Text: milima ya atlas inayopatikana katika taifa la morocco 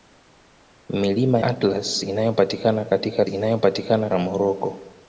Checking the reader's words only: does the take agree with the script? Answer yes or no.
no